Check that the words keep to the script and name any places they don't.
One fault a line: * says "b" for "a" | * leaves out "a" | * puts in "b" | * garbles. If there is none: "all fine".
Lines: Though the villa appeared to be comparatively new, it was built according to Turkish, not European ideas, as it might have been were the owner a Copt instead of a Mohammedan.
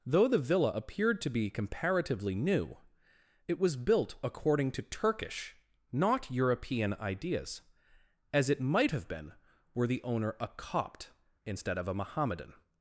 all fine